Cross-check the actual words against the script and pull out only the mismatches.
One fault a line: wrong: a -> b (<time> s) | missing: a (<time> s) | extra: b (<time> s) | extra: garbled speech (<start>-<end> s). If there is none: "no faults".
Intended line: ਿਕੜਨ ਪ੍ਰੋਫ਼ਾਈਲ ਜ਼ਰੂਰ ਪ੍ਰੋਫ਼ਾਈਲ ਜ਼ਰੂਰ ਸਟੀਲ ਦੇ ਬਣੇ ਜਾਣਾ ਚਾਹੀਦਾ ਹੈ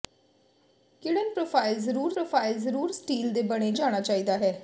no faults